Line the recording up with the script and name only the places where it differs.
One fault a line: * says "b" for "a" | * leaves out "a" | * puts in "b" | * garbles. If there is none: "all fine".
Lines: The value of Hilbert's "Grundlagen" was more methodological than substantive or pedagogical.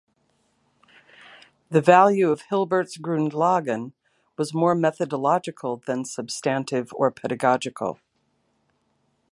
all fine